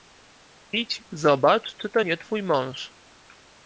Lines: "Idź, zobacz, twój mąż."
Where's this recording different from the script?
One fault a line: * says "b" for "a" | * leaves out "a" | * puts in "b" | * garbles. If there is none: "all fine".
* puts in "czy to nie"